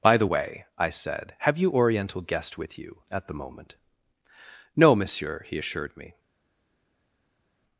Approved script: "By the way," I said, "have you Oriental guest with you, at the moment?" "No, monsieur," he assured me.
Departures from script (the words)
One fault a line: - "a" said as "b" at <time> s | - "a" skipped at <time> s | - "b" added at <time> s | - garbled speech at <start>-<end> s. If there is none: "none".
none